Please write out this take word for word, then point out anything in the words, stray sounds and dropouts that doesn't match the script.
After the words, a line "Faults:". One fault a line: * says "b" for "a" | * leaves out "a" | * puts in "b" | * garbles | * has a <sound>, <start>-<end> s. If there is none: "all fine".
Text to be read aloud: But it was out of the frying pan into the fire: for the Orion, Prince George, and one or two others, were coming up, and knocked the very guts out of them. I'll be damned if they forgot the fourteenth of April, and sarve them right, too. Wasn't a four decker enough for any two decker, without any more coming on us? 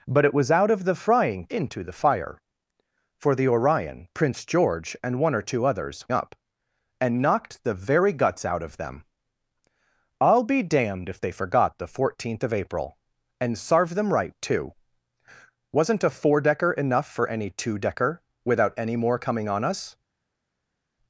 But it was out of the frying into the fire: for the Orion, Prince George, and one or two others, up, and knocked the very guts out of them. I'll be damned if they forgot the fourteenth of April, and sarve them right, too. Wasn't a four decker enough for any two decker, without any more coming on us?
Faults:
* leaves out "pan"
* leaves out "were coming"